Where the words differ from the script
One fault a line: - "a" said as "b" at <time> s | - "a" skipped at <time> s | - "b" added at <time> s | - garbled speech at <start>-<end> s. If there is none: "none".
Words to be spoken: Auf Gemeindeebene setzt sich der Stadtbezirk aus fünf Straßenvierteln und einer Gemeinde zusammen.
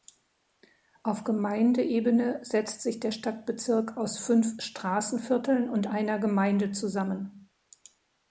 none